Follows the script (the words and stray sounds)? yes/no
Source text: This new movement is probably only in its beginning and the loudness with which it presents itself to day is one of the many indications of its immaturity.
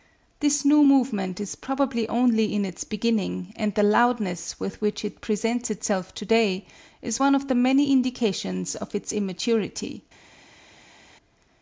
yes